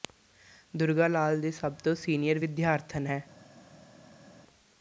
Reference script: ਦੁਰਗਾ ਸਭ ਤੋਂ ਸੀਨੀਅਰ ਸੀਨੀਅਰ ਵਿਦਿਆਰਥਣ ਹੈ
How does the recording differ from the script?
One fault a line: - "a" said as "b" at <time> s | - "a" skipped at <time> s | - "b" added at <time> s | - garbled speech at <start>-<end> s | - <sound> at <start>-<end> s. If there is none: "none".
- "ਲਾਲ ਦੀ" added at 1.1 s
- "ਸੀਨੀਅਰ" skipped at 2.4 s